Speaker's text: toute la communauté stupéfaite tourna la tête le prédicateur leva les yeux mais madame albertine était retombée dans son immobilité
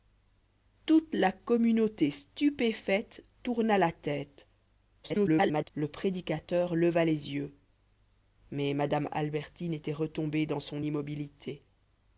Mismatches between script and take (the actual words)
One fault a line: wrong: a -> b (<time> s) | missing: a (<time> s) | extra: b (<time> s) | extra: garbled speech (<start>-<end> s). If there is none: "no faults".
extra: garbled speech (5.0-5.7 s)